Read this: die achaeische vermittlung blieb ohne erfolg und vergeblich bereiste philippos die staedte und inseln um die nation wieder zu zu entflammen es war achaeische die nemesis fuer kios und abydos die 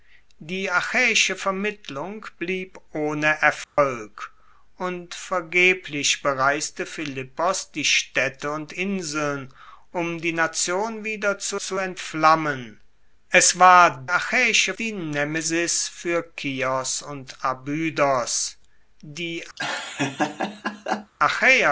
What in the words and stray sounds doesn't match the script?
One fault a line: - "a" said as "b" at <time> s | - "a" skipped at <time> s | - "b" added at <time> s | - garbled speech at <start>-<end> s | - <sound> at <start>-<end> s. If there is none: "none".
- dropout at 3.6-3.8 s
- laugh at 19.6-21.1 s